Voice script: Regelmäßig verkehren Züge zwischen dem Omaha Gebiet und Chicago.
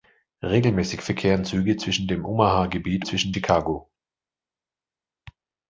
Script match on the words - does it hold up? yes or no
no